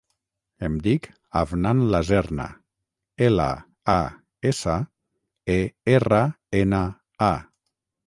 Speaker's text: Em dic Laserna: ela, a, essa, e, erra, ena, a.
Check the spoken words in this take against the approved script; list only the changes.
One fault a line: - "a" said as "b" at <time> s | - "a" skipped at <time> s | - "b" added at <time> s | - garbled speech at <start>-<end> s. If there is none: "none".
- "Afnan" added at 1.4 s